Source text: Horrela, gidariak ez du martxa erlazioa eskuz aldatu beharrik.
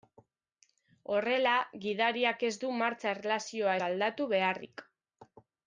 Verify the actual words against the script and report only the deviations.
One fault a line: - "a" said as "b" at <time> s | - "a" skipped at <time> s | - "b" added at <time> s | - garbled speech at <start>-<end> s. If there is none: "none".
- "eskuz" skipped at 3.8 s